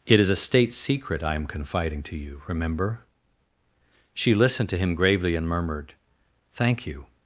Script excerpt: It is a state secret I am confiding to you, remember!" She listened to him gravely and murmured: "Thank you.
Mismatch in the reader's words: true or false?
false